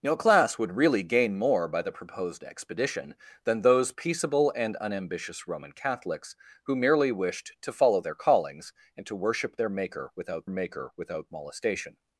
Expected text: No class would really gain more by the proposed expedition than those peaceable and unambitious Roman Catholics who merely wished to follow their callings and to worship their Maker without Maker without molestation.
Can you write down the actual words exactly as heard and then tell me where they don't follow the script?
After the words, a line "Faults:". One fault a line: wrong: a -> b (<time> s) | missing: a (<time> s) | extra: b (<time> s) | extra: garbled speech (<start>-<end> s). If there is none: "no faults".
No class would really gain more by the proposed expedition than those peaceable and unambitious Roman Catholics who merely wished to follow their callings and to worship their Maker without Maker without molestation.
Faults:
no faults